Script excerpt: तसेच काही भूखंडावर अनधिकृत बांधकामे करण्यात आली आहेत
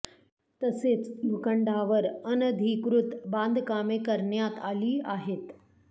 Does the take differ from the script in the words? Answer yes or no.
yes